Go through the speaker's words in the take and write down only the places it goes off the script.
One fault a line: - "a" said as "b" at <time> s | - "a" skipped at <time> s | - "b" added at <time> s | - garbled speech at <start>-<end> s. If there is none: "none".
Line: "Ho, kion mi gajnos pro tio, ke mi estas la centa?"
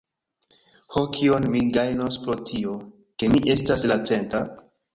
none